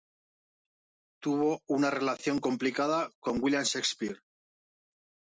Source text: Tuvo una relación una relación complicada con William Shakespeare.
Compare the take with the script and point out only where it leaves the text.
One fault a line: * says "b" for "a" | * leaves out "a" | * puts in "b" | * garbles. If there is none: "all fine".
* leaves out "una relación"